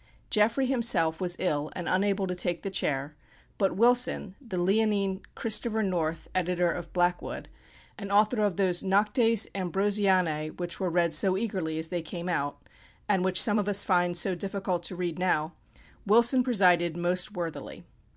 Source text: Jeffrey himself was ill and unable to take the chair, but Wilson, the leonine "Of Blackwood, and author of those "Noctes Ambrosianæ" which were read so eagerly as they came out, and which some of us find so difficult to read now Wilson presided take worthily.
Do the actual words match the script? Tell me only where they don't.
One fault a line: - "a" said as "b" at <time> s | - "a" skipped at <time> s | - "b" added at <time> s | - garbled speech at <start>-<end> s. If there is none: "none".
- "Christopher North editor" added at 5.3 s
- "take" said as "most" at 17.0 s